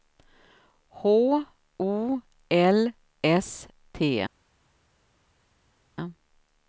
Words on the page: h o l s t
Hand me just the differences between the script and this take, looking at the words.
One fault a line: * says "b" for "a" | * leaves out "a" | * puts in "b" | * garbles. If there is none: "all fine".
all fine